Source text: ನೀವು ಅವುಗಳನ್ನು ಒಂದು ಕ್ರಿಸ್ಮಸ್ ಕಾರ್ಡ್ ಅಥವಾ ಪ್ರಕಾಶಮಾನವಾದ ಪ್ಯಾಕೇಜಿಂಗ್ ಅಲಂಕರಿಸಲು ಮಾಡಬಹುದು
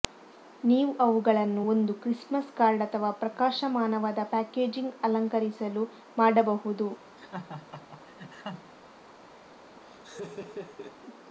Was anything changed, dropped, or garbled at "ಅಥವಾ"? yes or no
no